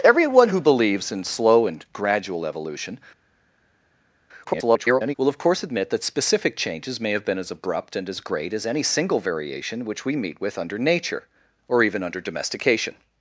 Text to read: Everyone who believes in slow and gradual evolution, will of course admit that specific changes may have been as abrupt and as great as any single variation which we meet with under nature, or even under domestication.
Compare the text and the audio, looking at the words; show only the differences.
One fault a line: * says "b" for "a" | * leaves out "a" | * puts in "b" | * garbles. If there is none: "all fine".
* garbles